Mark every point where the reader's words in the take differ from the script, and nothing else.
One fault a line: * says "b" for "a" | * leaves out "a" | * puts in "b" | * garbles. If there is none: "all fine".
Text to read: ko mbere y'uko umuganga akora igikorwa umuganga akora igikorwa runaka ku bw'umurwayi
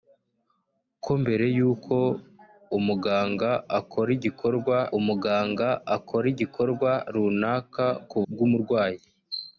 all fine